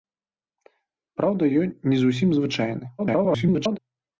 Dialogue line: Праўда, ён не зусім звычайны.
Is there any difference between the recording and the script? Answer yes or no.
yes